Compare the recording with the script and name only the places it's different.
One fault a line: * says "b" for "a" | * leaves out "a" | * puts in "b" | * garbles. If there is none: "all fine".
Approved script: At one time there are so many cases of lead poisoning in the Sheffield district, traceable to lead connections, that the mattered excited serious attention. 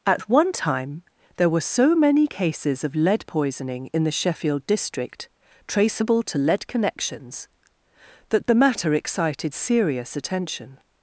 * says "were" for "are"
* says "matter" for "mattered"